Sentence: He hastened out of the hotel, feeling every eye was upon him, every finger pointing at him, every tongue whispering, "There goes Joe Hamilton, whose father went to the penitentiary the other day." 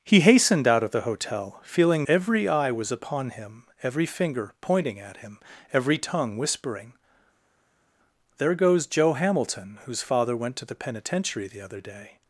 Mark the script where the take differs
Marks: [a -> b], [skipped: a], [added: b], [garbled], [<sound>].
He hastened out of the hotel, feeling every eye was upon him, every finger pointing at him, every tongue whispering, "There goes Joe Hamilton, whose father went to the penitentiary the other day."